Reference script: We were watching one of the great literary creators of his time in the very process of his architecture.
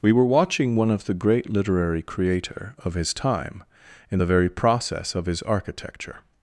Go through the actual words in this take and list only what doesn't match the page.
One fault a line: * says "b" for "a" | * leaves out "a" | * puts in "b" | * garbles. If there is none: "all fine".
* says "creator" for "creators"